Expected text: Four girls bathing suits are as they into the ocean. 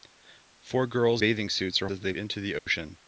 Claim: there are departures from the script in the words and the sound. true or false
true